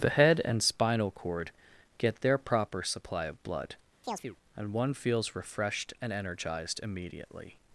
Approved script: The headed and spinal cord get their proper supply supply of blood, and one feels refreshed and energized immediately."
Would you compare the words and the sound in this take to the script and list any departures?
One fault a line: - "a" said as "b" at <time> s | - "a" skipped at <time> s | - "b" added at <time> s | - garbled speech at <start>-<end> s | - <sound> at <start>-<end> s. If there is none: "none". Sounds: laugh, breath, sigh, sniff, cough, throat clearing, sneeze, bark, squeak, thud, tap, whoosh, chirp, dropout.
- "headed" said as "head" at 0.1 s
- "supply" skipped at 3.2 s
- chirp at 4.0-4.4 s